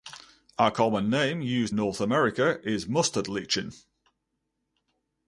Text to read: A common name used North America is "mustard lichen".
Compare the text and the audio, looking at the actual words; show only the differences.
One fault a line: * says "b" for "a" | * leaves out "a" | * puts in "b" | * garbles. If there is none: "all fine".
all fine